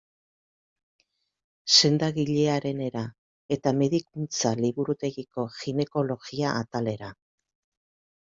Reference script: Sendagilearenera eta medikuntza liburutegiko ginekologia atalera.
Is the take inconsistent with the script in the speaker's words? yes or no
no